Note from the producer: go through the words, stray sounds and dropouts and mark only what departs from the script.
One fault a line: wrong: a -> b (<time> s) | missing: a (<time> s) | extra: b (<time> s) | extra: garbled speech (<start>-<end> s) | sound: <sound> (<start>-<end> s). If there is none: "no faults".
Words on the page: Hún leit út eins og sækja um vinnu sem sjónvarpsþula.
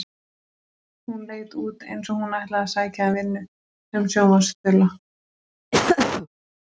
extra: hún ætlaði að (2.2 s)
sound: laugh (5.7-6.3 s)